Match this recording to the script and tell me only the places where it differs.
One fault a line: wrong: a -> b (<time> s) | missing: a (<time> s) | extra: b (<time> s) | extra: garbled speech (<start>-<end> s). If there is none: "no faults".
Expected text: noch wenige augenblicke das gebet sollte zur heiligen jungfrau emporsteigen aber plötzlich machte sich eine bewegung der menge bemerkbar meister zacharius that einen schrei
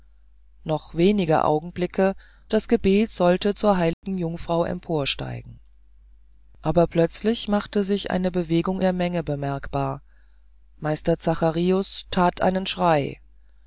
no faults